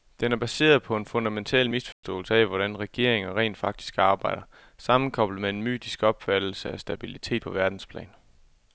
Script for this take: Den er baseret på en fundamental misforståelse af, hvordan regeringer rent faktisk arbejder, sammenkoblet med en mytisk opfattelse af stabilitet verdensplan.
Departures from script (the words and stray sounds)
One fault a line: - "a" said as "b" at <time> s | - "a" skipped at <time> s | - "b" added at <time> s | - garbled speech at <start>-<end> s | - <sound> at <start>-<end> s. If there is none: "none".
- dropout at 1.9-2.0 s
- "på" added at 7.4 s